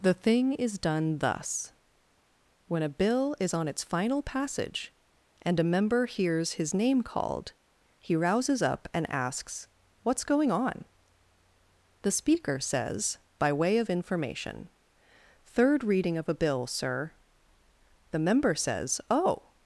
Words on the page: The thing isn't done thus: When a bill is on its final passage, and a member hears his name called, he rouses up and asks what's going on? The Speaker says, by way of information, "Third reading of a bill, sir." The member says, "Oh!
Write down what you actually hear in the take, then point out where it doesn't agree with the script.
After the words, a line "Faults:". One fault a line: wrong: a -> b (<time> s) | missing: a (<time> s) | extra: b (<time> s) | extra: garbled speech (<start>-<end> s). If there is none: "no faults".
The thing is done thus: When a bill is on its final passage, and a member hears his name called, he rouses up and asks what's going on? The Speaker says, by way of information, "Third reading of a bill, sir." The member says, "Oh!
Faults:
wrong: isn't -> is (0.5 s)